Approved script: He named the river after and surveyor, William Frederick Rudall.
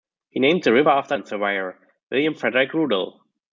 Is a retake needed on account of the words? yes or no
no